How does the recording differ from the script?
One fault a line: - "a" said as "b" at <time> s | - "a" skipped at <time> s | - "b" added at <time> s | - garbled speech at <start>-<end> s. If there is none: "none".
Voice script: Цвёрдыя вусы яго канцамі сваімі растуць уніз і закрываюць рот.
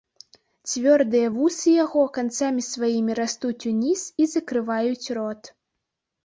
none